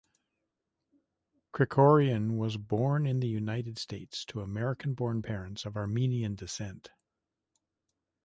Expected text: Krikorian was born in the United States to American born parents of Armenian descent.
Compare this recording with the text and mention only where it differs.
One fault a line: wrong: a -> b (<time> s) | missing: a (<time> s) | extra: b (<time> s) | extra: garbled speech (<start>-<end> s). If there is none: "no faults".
no faults